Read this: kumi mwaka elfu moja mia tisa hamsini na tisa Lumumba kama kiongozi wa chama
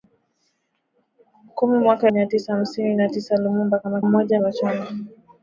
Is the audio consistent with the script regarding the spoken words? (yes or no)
no